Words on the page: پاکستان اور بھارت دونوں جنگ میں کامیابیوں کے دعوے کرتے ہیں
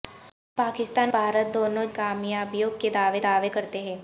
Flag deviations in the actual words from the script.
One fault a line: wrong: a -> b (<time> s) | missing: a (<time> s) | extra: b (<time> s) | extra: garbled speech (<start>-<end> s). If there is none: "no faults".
missing: اور (1.1 s)
missing: جنگ میں (1.8 s)
extra: دعوے (3.2 s)